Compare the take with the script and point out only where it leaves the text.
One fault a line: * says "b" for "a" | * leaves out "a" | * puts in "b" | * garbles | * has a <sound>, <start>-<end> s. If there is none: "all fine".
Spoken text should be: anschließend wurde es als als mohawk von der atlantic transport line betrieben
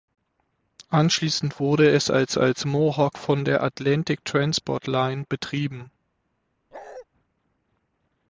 * has a bark, 6.7-7.1 s